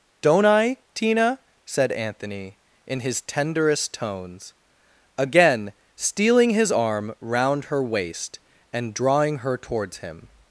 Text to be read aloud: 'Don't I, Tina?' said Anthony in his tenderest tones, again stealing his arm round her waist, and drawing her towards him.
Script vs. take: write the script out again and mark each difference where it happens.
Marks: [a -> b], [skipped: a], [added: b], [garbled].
'Don't I, Tina?' said Anthony in his tenderest tones, again stealing his arm round her waist, and drawing her towards him.